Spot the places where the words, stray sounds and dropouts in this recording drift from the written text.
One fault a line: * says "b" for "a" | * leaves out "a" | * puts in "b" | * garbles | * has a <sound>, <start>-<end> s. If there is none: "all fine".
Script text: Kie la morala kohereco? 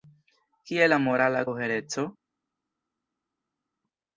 all fine